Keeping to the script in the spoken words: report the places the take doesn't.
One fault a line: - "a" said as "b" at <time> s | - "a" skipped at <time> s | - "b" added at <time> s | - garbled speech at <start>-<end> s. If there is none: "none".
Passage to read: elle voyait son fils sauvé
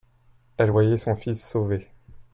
none